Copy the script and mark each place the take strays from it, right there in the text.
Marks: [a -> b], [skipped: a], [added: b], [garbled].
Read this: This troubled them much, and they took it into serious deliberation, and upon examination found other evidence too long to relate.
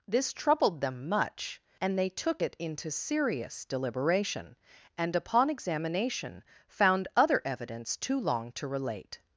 This troubled them much, and they took it into serious deliberation, and upon examination found other evidence too long to relate.